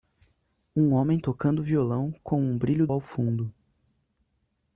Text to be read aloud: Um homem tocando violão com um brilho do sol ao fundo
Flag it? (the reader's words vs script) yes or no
yes